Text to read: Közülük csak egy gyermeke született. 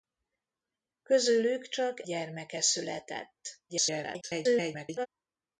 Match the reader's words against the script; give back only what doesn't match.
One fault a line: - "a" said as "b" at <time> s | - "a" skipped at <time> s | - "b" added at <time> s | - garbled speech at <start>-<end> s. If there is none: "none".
- "egy" skipped at 2.0 s
- garbled speech at 3.7-5.1 s